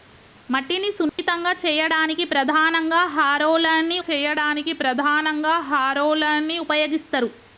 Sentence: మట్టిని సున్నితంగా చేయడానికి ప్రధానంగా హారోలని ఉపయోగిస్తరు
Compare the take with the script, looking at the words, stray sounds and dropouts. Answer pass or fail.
fail